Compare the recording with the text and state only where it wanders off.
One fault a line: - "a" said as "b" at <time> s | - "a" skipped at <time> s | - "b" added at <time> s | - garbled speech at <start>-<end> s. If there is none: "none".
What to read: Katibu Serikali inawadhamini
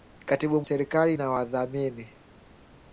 none